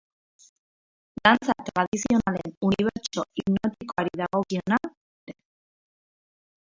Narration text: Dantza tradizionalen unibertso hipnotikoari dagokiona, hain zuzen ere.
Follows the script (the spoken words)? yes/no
no